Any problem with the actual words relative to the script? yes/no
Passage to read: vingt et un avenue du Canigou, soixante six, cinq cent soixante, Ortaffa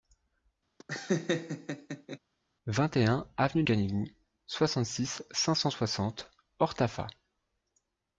yes